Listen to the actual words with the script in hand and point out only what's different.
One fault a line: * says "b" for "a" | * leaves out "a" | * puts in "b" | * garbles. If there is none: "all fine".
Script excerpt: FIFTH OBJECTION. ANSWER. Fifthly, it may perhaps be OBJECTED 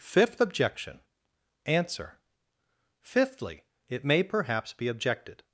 all fine